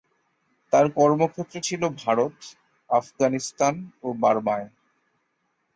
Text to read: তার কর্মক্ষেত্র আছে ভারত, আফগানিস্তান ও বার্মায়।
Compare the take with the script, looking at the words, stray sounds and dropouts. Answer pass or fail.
fail